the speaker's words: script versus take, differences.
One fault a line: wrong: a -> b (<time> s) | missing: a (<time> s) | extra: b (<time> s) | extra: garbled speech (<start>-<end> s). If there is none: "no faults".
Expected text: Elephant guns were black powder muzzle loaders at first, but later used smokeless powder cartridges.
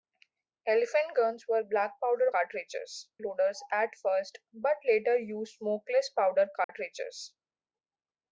wrong: muzzle -> cartridges (2.3 s)